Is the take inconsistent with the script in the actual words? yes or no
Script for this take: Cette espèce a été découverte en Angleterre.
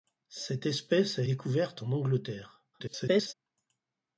yes